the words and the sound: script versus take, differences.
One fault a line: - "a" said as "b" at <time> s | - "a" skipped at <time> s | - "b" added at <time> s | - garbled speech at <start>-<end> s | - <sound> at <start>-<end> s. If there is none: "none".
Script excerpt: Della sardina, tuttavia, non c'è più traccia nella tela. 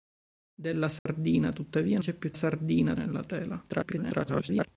- dropout at 1.0-1.1 s
- "non" skipped at 2.0 s
- "traccia" said as "sardina" at 2.3 s
- garbled speech at 3.7-4.7 s